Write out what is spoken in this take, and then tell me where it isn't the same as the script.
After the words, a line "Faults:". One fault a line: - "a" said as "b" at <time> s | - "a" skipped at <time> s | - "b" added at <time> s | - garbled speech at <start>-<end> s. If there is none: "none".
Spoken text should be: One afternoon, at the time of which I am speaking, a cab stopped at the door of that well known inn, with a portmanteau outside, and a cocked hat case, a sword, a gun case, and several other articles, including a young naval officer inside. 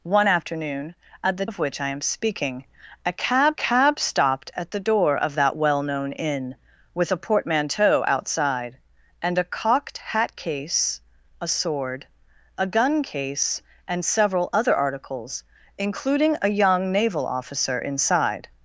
One afternoon, at the of which I am speaking, a cab cab stopped at the door of that well known inn, with a portmanteau outside, and a cocked hat case, a sword, a gun case, and several other articles, including a young naval officer inside.
Faults:
- "time" skipped at 1.4 s
- "cab" added at 3.5 s